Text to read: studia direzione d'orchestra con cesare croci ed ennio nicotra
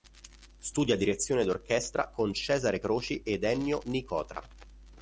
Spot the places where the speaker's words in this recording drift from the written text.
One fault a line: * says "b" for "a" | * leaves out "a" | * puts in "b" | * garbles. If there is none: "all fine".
all fine